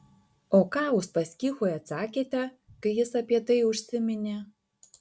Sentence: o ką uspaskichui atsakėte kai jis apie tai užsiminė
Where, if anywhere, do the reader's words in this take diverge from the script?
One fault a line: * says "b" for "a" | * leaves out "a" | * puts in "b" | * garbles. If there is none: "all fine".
all fine